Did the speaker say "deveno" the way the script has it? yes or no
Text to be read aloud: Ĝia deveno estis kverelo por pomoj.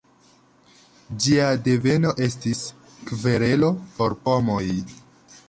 yes